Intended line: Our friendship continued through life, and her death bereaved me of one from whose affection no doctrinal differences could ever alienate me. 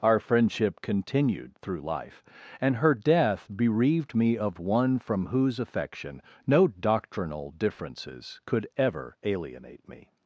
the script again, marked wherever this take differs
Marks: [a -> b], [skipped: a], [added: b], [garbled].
Our friendship continued through life, and her death bereaved me of one from whose affection no doctrinal differences could ever alienate me.